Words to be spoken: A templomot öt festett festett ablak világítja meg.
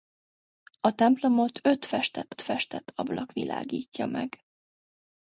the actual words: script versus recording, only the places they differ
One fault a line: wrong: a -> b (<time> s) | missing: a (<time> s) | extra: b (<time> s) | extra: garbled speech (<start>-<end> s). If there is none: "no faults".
no faults